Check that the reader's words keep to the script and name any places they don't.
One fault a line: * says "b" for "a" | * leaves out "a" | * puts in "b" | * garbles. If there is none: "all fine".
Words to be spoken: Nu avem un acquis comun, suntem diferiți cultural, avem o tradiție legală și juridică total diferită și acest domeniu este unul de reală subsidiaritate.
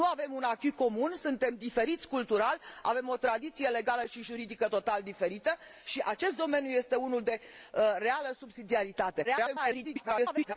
* garbles